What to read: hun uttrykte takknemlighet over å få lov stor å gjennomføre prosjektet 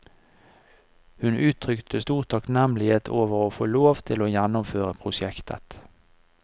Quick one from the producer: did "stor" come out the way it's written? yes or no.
no